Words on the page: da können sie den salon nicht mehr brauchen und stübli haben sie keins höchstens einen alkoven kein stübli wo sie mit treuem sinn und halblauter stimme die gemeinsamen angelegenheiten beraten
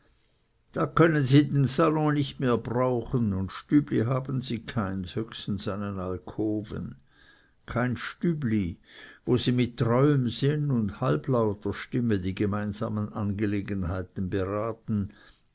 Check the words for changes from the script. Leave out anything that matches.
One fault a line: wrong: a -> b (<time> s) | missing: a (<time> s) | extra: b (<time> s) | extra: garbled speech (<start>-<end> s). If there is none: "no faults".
no faults